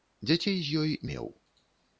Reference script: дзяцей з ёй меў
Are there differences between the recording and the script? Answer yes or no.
no